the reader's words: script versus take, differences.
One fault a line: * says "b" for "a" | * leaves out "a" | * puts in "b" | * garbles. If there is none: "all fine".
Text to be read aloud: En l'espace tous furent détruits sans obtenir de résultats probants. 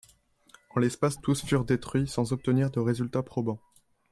all fine